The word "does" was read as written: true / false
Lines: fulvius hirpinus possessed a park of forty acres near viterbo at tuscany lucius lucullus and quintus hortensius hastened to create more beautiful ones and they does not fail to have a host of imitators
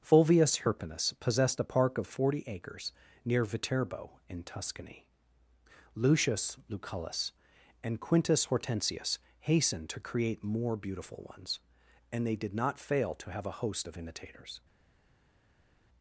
false